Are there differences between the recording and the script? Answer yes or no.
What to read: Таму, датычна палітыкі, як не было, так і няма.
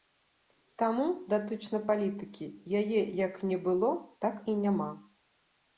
yes